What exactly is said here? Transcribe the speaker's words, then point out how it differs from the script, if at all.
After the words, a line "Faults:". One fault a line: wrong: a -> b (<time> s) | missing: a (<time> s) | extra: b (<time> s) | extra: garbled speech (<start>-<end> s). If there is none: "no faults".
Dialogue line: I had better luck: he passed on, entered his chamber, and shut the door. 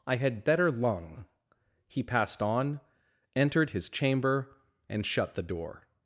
I had better lung: he passed on, entered his chamber, and shut the door.
Faults:
wrong: luck -> lung (0.7 s)